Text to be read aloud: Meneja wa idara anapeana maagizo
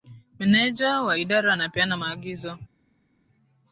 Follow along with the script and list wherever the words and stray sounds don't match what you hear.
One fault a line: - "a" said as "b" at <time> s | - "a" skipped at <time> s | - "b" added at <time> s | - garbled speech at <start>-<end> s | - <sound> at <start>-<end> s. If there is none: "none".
none